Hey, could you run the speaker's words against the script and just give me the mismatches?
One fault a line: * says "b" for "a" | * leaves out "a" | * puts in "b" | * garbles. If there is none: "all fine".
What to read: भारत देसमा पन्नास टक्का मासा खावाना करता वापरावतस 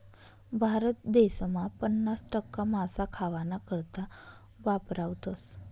all fine